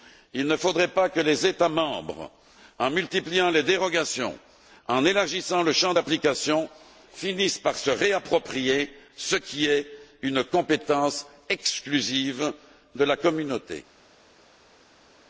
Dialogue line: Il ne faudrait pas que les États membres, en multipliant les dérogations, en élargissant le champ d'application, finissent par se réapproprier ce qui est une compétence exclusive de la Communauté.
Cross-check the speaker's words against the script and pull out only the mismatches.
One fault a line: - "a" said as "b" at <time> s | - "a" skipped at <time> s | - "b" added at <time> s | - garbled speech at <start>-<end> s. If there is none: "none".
none